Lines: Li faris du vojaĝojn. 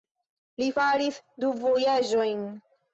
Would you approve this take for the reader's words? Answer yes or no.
yes